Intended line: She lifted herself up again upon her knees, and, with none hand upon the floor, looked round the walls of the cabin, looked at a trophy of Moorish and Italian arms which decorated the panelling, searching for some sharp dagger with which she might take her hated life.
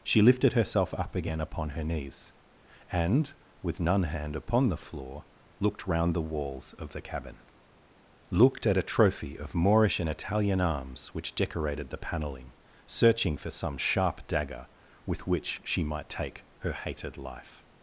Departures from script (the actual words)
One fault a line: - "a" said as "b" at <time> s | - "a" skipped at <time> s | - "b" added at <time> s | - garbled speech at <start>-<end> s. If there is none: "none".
none